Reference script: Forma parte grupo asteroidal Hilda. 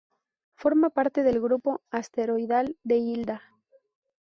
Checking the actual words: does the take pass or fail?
fail